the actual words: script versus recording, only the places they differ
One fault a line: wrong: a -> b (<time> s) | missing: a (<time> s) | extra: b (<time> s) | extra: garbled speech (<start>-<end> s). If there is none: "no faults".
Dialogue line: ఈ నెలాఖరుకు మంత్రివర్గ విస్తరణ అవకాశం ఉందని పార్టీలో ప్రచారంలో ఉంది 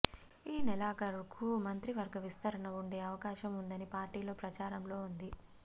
extra: ఉండే (2.8 s)